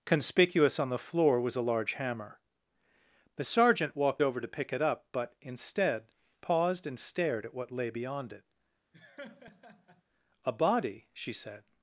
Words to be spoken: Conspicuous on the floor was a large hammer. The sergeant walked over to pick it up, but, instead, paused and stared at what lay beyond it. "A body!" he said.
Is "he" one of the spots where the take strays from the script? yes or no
yes